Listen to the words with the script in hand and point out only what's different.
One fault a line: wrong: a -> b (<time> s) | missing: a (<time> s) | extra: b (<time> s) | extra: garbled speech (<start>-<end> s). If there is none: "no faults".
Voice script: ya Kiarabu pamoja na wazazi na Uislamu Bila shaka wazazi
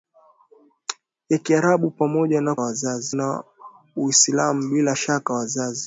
no faults